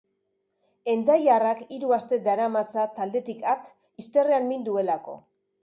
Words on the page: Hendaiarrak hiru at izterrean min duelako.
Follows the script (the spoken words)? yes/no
no